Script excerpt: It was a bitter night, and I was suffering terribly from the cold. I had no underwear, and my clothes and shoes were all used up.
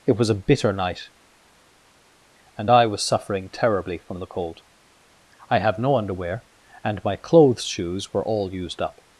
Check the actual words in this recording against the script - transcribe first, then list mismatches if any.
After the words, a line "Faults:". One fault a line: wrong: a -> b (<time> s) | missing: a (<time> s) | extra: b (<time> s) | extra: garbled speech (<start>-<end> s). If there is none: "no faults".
It was a bitter night, and I was suffering terribly from the cold. I have no underwear, and my clothes shoes were all used up.
Faults:
wrong: had -> have (5.6 s)
missing: and (7.6 s)